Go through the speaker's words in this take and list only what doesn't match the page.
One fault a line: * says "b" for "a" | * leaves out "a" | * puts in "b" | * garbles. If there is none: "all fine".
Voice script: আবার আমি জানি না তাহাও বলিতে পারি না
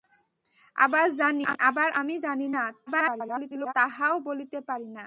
* garbles